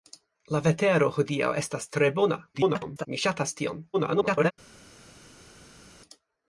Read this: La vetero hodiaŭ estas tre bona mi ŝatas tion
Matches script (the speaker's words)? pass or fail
fail